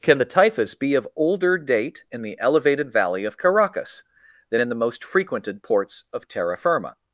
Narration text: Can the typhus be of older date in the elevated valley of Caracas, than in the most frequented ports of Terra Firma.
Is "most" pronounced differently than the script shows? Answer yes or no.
no